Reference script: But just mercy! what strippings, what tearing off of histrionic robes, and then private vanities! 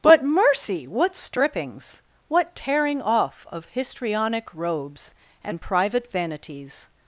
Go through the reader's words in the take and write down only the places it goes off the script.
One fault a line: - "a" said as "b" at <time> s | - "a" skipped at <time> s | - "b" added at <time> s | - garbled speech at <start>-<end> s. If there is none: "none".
- "just" skipped at 0.2 s
- "then" skipped at 5.6 s